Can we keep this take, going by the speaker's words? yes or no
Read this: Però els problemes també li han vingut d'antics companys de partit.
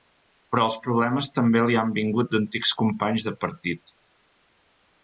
yes